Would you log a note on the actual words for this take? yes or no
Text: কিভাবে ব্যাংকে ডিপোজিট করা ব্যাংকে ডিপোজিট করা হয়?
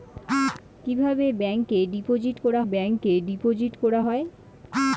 no